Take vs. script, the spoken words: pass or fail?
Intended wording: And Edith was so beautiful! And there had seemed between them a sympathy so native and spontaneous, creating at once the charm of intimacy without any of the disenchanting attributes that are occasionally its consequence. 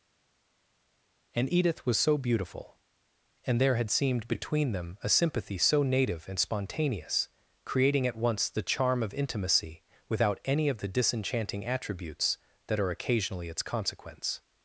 pass